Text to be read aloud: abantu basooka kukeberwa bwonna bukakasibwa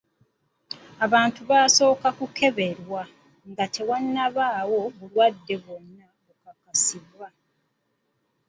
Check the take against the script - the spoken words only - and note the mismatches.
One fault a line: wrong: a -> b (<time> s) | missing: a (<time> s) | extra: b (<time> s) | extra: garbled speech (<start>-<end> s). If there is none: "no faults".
extra: nga tewannabaawo bulwadde (3.5 s)